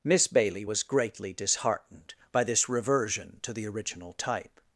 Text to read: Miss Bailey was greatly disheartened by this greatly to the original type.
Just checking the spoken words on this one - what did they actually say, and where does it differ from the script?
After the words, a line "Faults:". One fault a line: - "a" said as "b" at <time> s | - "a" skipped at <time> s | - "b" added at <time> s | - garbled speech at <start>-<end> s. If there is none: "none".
Miss Bailey was greatly disheartened by this reversion to the original type.
Faults:
- "greatly" said as "reversion" at 2.7 s